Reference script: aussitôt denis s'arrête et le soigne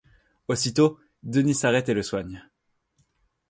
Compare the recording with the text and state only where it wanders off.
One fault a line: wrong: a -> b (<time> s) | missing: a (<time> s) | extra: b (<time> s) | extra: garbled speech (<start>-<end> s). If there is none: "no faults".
no faults